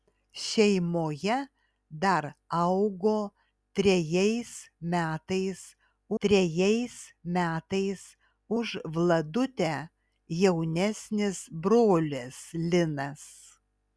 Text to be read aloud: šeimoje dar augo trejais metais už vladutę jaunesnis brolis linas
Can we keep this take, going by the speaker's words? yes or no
no